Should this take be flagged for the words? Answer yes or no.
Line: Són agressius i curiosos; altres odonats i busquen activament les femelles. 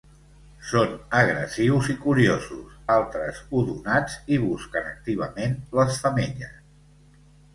no